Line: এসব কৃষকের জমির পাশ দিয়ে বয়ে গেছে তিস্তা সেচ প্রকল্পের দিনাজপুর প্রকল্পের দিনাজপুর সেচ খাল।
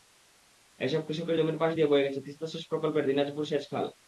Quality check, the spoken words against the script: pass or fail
fail